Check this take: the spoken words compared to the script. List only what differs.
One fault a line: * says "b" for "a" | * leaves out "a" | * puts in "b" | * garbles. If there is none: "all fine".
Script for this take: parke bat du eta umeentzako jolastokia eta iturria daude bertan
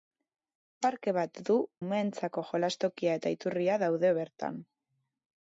* leaves out "eta"